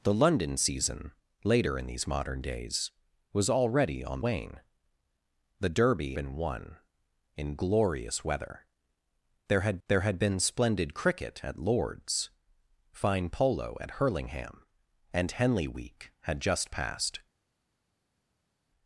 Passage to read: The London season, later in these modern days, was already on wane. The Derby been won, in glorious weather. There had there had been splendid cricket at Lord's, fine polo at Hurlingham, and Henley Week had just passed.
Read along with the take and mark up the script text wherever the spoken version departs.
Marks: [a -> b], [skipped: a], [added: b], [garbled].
The London season, later in these modern days, was already on wane. The Derby been won, in glorious weather. There had there had been splendid cricket at Lord's, fine polo at Hurlingham, and Henley Week had just passed.